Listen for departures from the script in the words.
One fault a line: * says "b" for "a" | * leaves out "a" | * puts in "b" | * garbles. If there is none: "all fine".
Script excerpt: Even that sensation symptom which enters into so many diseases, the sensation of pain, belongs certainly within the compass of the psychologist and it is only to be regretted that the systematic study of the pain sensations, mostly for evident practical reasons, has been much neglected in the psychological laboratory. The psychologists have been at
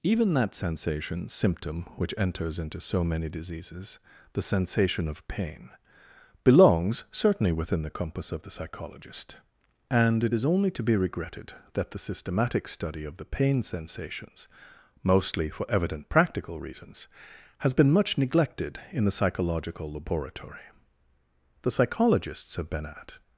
all fine